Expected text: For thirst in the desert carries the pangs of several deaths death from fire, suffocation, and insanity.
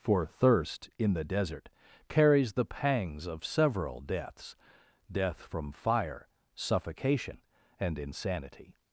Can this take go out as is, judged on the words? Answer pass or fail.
pass